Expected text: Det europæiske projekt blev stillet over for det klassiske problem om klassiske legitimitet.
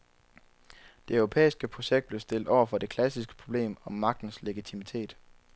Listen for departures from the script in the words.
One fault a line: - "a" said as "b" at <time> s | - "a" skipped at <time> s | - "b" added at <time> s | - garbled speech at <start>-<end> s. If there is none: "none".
- "klassiske" said as "magtens" at 3.9 s